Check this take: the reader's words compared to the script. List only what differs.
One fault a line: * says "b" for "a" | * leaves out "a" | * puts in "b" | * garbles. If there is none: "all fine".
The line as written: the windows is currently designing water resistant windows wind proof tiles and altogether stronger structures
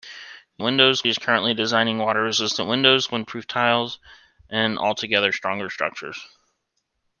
all fine